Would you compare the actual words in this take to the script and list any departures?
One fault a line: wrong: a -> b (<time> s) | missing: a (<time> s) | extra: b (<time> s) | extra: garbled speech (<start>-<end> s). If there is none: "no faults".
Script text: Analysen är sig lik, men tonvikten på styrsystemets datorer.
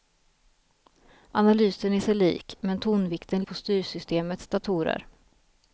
no faults